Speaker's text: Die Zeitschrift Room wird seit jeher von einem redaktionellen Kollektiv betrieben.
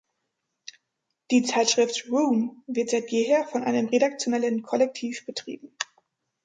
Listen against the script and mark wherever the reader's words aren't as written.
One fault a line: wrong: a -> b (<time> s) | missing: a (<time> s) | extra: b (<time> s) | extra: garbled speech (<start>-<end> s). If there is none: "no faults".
no faults